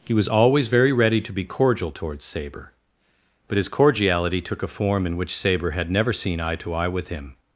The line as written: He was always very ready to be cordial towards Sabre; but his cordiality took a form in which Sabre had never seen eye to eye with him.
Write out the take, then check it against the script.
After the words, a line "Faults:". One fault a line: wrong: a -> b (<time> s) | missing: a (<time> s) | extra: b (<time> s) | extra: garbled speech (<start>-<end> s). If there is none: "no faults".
He was always very ready to be cordial towards Sabre; but his cordiality took a form in which Sabre had never seen eye to eye with him.
Faults:
no faults